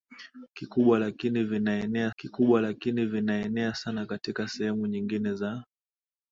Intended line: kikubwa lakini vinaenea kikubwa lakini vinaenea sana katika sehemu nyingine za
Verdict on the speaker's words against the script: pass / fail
pass